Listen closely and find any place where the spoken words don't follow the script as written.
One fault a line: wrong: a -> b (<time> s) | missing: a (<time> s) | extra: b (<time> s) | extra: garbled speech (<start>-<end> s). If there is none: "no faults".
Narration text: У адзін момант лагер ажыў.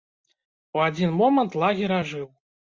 no faults